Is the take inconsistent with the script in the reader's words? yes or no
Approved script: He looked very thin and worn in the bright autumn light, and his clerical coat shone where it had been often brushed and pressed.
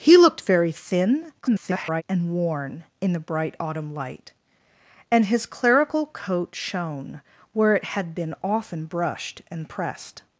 yes